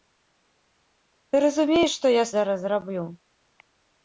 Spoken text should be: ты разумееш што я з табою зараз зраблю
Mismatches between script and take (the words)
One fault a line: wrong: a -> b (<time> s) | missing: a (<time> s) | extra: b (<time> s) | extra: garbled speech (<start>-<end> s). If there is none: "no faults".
missing: з табою (2.3 s)